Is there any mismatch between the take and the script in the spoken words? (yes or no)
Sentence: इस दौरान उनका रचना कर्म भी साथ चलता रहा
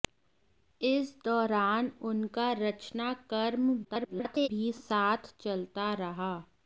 yes